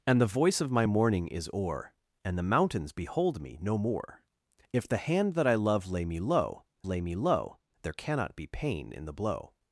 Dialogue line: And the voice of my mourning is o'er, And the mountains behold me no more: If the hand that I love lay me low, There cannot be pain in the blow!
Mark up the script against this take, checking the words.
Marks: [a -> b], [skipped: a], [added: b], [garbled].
And the voice of my mourning is o'er, And the mountains behold me no more: If the hand that I love lay me low, [added: lay me low] There cannot be pain in the blow!